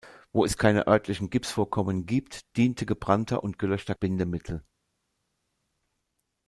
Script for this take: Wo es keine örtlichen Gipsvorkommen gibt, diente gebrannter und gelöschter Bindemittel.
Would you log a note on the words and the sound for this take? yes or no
no